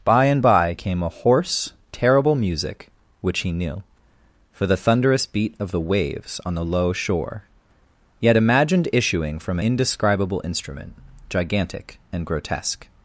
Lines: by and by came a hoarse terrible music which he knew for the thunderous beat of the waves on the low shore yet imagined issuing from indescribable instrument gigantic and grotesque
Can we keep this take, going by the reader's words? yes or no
yes